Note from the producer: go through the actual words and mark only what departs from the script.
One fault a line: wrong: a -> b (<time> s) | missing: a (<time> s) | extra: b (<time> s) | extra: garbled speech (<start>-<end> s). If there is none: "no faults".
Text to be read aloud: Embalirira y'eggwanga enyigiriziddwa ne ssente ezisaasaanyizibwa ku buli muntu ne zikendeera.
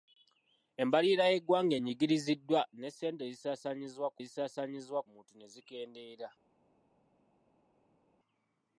wrong: buli -> ezisaasaanyizibwa (4.2 s)